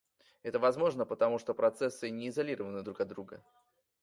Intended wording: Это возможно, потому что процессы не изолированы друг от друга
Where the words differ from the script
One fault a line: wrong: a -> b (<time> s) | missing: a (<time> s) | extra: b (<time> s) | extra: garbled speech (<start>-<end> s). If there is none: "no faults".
no faults